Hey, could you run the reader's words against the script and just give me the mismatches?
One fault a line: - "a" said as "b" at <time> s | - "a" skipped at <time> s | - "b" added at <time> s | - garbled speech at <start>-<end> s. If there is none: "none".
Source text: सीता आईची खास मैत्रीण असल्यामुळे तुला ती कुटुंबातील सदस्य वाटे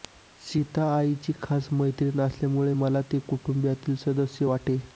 - "तुला" said as "मला" at 2.7 s